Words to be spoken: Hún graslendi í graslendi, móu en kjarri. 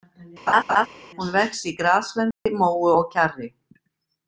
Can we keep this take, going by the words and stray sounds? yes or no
no